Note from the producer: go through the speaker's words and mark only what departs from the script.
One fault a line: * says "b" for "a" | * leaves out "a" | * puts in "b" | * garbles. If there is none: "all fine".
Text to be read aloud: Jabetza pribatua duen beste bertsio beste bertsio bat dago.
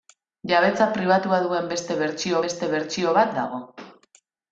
all fine